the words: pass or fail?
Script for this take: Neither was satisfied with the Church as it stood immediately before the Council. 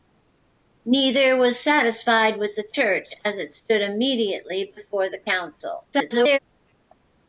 fail